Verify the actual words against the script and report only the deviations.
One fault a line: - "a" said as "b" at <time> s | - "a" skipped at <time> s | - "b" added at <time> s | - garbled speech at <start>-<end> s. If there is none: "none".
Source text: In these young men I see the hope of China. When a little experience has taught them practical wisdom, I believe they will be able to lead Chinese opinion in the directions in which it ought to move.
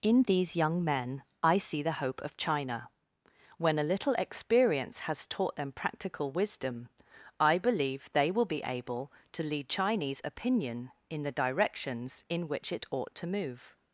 none